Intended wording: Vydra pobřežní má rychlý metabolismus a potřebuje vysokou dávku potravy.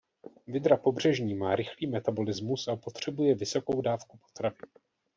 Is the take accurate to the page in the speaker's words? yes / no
yes